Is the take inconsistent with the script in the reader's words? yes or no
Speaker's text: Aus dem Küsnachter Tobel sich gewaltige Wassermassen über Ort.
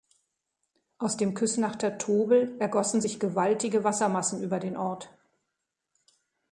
yes